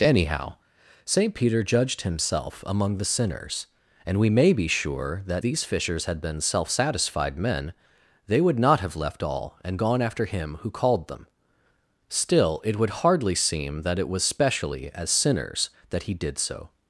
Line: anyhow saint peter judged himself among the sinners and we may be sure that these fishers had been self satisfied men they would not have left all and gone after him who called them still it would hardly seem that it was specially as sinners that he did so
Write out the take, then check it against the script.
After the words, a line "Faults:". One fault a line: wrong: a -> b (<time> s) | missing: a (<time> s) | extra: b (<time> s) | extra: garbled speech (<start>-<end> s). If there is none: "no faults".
anyhow saint peter judged himself among the sinners and we may be sure that these fishers had been self satisfied men they would not have left all and gone after him who called them still it would hardly seem that it was specially as sinners that he did so
Faults:
no faults